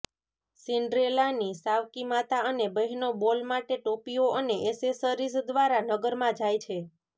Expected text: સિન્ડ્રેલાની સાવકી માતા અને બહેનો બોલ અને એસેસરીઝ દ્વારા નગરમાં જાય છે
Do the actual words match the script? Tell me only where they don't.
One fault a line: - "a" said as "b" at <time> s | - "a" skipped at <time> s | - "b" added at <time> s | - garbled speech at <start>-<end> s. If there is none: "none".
- "માટે ટોપીઓ" added at 3.5 s